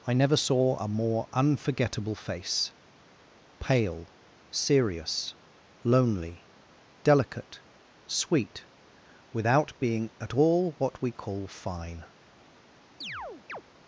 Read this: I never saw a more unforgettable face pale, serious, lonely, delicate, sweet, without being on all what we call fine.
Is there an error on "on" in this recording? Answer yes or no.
yes